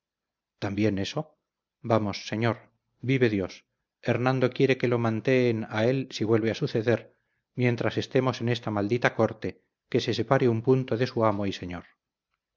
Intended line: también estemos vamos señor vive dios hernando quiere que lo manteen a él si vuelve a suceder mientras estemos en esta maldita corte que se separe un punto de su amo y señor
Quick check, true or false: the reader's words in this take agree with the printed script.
false